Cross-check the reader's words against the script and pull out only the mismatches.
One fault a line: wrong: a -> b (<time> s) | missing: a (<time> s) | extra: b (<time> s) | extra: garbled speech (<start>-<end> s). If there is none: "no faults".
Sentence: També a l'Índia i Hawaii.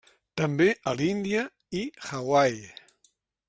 no faults